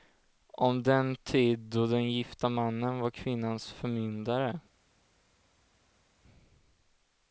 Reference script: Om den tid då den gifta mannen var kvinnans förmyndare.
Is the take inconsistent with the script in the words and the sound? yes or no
no